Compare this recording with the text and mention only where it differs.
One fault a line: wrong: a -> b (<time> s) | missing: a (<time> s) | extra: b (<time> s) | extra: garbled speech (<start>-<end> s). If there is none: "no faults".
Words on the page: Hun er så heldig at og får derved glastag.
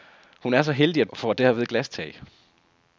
no faults